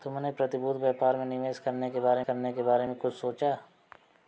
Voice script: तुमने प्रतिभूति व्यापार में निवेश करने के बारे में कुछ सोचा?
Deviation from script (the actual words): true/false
true